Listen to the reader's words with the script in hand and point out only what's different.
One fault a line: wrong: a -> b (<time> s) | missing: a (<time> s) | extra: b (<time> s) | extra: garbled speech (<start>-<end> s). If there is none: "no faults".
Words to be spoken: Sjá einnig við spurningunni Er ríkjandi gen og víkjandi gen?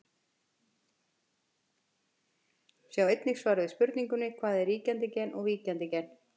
extra: svar (3.4 s)
extra: Hvað (4.4 s)